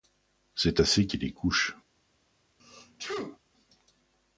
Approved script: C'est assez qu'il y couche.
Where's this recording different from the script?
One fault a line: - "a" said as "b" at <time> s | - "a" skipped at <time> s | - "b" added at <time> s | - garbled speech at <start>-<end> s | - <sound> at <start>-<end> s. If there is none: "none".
- sneeze at 2.6-3.4 s